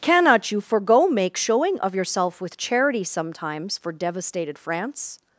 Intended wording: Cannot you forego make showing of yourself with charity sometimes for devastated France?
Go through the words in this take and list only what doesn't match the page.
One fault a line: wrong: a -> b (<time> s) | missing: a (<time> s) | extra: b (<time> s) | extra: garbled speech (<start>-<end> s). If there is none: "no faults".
no faults